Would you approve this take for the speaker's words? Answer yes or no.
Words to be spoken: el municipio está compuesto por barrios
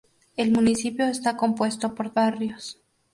yes